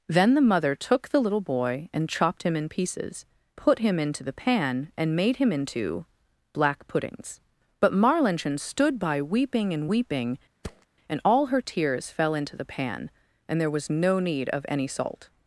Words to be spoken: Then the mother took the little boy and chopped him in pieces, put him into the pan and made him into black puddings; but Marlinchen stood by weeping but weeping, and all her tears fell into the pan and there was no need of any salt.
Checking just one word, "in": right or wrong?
right